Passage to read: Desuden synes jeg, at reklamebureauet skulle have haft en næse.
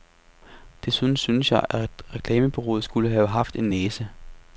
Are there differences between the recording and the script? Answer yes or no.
no